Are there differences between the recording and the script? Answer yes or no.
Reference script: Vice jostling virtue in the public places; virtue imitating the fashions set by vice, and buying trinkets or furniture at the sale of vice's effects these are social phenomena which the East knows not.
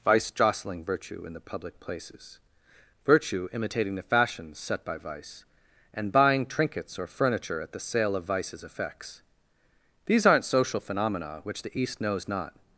yes